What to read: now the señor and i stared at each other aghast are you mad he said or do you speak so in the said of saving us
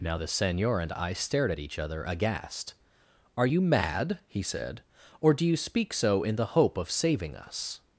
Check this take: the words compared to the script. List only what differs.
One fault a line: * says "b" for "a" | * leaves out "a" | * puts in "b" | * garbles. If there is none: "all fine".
* says "hope" for "said"